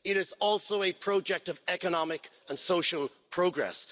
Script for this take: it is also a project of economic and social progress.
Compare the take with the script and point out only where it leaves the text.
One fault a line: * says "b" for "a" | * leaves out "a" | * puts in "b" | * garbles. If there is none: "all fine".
all fine